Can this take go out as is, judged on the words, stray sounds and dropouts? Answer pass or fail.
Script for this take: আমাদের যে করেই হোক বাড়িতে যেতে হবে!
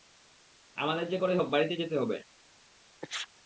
fail